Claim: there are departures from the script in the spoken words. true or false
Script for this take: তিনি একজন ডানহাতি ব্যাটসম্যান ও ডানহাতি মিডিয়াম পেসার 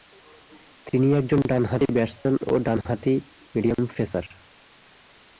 false